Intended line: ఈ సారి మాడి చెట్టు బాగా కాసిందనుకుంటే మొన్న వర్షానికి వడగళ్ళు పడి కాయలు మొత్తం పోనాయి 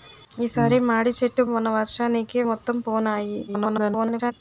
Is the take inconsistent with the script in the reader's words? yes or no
yes